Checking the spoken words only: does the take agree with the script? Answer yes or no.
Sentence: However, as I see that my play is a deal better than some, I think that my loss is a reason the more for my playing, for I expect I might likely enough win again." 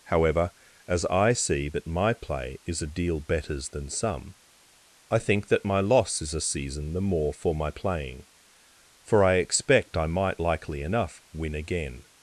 no